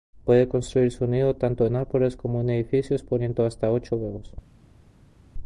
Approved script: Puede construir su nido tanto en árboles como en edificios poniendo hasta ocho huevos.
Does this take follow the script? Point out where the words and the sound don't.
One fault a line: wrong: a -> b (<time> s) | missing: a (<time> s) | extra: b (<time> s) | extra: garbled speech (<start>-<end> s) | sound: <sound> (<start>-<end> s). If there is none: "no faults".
no faults